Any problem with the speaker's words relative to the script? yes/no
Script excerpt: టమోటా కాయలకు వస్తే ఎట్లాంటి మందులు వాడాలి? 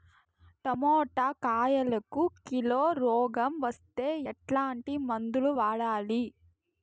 yes